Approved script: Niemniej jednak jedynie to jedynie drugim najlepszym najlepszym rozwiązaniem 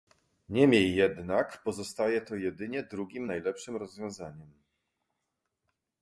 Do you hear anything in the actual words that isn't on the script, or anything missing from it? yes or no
yes